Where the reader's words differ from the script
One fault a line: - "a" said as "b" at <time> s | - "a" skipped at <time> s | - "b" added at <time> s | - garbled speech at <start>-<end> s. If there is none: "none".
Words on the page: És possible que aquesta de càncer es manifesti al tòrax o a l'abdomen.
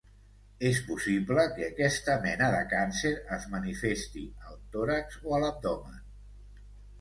- "mena" added at 2.2 s